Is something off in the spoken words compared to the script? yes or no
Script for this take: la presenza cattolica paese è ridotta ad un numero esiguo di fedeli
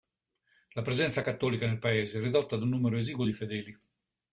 yes